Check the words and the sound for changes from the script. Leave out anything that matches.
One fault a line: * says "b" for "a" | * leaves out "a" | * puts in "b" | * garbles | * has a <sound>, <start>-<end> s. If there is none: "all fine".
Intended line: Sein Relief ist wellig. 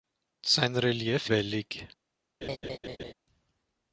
* leaves out "ist"
* has a laugh, 2.4-3.1 s